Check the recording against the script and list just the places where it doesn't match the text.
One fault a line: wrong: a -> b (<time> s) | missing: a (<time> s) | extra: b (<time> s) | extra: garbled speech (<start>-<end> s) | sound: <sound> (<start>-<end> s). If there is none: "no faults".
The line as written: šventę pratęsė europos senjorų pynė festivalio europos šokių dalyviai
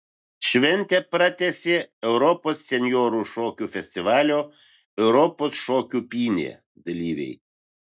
wrong: pynė -> šokių (3.4 s)
extra: pynė (6.2 s)